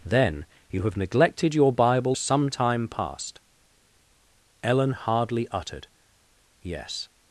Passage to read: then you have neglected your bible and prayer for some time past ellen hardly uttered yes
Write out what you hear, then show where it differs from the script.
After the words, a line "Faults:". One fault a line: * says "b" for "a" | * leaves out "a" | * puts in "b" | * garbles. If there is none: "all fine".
then you have neglected your bible some time past ellen hardly uttered yes
Faults:
* leaves out "and prayer for"